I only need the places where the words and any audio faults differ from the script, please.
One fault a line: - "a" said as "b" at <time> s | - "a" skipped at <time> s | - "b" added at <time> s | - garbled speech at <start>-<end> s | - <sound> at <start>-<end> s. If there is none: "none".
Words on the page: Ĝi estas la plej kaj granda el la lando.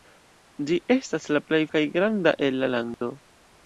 - dropout at 2.9-3.0 s